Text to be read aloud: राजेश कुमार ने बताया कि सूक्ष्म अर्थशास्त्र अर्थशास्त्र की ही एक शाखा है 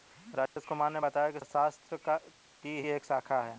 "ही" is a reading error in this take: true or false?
true